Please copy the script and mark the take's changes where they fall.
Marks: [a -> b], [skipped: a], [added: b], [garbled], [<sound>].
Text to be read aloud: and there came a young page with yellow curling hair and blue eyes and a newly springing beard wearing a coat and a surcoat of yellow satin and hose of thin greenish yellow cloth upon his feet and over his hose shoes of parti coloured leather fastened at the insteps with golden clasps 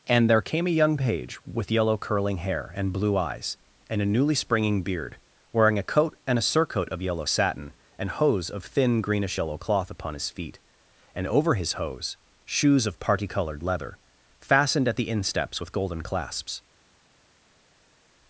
and there came a young page with yellow curling hair and blue eyes and a newly springing beard wearing a coat and a surcoat of yellow satin and hose of thin greenish yellow cloth upon his feet and over his hose shoes of parti coloured leather fastened at the insteps with golden clasps